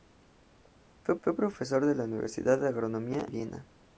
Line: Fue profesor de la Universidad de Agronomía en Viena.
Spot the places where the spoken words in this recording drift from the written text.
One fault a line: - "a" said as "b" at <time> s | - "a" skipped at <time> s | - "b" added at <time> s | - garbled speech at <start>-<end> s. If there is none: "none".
- "fue" added at 1.2 s
- "en" skipped at 3.2 s